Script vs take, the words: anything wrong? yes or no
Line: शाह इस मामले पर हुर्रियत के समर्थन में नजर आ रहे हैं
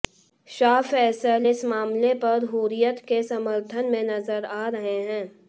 yes